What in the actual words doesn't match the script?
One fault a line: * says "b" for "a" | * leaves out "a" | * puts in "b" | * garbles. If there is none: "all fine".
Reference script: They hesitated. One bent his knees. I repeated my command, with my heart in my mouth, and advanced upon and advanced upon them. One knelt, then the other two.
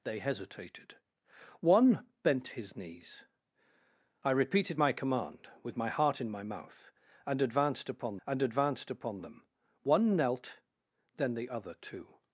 all fine